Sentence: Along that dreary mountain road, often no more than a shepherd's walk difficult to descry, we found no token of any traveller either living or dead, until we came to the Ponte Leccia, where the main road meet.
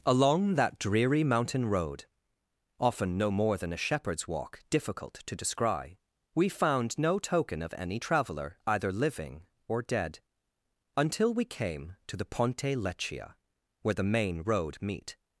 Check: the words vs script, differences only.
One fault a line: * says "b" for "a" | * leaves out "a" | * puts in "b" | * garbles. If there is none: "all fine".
all fine